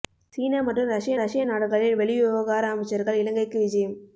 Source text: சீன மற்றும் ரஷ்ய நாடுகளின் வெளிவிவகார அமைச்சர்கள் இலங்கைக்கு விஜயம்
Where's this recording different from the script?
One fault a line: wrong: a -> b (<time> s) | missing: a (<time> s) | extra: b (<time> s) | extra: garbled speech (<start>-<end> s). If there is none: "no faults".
extra: ரஷ்ய (1.2 s)